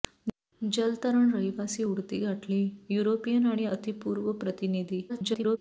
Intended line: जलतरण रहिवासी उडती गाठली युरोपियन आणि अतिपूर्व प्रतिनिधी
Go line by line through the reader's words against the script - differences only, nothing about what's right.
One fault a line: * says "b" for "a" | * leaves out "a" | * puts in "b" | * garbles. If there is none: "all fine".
* garbles